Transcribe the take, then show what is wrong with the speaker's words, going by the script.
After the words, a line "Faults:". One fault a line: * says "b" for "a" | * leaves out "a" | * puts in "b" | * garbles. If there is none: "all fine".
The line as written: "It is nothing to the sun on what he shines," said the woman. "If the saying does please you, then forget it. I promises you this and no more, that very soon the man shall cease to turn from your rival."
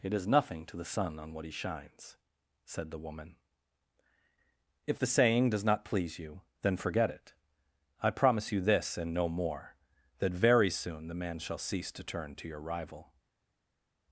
"It is nothing to the sun on what he shines," said the woman. "If the saying does not please you, then forget it. I promise you this and no more, that very soon the man shall cease to turn to your rival."
Faults:
* puts in "not"
* says "promise" for "promises"
* says "to" for "from"